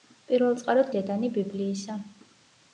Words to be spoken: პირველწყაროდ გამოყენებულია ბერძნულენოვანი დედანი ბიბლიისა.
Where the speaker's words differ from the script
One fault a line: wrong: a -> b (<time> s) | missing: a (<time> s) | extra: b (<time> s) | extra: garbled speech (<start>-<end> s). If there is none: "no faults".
missing: გამოყენებულია ბერძნულენოვანი (0.9 s)